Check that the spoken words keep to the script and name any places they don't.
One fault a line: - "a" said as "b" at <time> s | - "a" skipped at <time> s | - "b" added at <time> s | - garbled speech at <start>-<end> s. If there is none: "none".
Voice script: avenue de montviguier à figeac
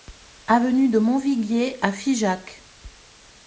none